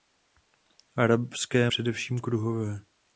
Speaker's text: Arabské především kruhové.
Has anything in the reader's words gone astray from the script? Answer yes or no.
no